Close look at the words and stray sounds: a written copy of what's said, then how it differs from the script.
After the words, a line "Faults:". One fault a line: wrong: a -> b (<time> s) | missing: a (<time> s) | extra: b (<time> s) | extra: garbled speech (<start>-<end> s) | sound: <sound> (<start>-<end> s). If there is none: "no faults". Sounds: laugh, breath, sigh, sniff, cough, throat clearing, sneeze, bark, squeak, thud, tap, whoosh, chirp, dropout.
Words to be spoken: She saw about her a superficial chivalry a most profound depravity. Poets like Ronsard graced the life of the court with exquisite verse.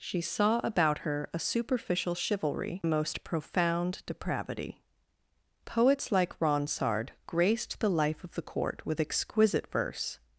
She saw about her a superficial chivalry a most profound depravity. Poets like Ronsard graced the life of the court with exquisite verse.
Faults:
no faults